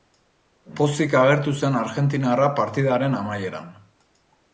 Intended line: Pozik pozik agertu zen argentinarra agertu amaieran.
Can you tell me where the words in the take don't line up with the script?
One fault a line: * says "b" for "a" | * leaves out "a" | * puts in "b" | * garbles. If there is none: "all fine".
* leaves out "pozik"
* says "partidaren" for "agertu"